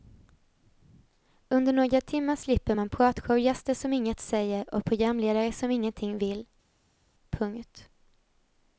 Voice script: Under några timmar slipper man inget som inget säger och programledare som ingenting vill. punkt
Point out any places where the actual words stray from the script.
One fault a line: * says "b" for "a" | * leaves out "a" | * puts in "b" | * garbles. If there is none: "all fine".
* says "pratshowgäster" for "inget"